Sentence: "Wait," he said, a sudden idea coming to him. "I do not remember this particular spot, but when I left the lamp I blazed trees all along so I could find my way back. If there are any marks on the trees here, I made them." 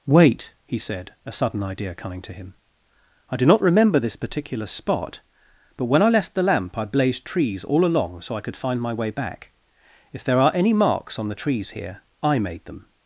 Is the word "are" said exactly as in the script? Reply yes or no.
yes